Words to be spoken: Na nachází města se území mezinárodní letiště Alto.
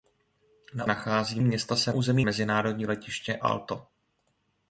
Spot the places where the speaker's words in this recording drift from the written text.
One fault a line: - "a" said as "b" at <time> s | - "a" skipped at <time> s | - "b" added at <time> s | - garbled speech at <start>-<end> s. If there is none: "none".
none